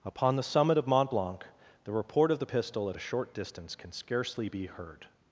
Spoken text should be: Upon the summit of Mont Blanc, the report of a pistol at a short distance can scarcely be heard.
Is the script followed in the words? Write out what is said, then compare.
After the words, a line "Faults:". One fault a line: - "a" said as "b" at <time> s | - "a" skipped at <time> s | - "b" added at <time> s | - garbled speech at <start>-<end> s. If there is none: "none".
Upon the summit of Mont Blanc, the report of the pistol at a short distance can scarcely be heard.
Faults:
- "a" said as "the" at 2.4 s